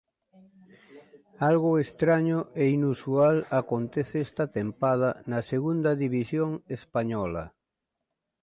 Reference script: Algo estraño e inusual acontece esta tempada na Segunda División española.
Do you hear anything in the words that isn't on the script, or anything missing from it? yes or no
no